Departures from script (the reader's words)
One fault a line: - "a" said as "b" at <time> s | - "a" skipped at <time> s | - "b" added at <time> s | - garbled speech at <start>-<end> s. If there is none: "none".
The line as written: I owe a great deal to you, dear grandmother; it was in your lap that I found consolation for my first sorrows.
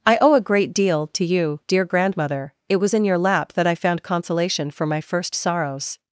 none